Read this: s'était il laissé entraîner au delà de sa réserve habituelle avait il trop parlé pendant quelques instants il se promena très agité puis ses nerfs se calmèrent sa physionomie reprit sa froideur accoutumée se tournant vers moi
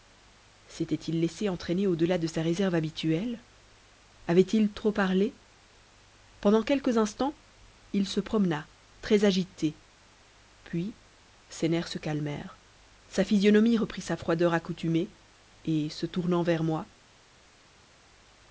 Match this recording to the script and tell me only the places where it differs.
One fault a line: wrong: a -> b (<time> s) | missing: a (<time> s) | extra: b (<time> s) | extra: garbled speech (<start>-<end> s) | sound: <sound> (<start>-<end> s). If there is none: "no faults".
extra: et (15.7 s)